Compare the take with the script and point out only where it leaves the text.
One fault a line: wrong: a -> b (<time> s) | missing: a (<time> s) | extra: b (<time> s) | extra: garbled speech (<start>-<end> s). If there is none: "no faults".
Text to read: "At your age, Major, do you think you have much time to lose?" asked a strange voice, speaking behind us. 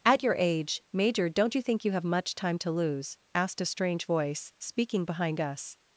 wrong: do -> don't (1.3 s)